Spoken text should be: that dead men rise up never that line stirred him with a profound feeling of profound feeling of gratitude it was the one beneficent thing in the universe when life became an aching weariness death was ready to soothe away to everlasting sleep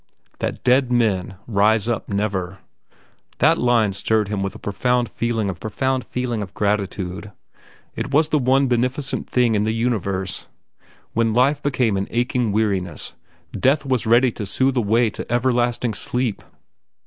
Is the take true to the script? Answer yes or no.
yes